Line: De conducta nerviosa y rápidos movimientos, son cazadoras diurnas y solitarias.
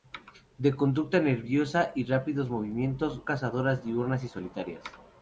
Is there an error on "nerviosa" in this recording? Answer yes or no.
no